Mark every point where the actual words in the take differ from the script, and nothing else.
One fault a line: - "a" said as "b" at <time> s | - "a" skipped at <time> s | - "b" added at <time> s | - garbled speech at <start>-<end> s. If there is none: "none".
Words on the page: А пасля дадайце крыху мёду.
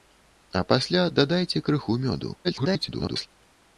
- garbled speech at 2.4-3.3 s